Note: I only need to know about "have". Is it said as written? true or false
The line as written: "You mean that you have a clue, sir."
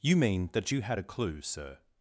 false